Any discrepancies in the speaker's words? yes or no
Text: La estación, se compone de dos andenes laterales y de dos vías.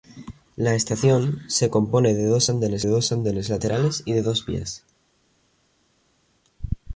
yes